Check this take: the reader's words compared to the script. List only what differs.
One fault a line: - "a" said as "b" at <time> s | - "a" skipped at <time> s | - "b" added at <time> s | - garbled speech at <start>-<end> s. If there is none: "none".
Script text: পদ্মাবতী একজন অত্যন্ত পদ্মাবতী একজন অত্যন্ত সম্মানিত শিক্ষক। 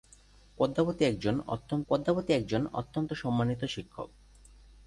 none